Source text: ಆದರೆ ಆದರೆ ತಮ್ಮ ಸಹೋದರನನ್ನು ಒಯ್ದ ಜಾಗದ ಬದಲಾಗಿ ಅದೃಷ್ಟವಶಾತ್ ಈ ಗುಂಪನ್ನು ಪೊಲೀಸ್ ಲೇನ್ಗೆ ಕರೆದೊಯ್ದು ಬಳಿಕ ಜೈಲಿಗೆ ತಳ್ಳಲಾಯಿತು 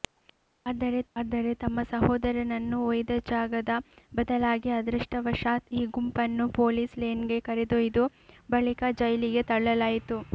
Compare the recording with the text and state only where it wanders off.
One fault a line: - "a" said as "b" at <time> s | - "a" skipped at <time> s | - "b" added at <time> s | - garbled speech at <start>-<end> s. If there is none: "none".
none